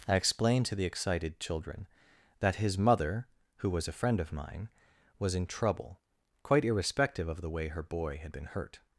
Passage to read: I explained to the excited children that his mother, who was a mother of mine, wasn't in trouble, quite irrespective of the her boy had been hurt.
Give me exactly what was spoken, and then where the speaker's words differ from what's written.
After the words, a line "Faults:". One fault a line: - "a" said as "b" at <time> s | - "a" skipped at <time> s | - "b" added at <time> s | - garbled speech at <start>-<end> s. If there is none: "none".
I explained to the excited children that his mother, who was a friend of mine, was in trouble, quite irrespective of the way her boy had been hurt.
Faults:
- "mother" said as "friend" at 3.9 s
- "wasn't" said as "was" at 5.2 s
- "way" added at 7.5 s